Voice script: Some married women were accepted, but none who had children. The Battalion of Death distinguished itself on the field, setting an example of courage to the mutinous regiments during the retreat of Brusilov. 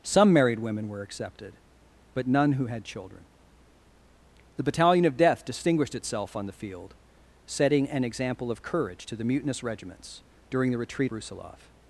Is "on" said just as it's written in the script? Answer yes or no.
yes